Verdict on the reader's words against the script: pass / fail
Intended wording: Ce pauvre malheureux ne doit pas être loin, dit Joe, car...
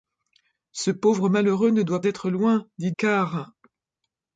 fail